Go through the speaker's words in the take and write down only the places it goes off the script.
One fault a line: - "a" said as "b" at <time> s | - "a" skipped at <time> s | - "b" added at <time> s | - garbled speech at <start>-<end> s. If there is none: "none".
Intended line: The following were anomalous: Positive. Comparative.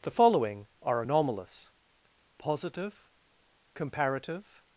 - "were" said as "are" at 0.8 s